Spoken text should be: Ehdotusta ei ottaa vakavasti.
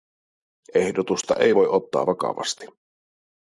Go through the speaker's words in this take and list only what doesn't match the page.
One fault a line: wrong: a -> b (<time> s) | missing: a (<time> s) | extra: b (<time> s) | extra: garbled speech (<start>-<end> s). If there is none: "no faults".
extra: voi (1.5 s)